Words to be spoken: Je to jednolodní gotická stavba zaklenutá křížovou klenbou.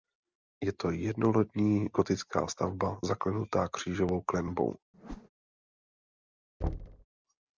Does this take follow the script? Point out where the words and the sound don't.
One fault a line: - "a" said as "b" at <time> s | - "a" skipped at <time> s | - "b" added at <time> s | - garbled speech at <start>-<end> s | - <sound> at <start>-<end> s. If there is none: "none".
- whoosh at 4.9-5.3 s
- thud at 6.6-7.1 s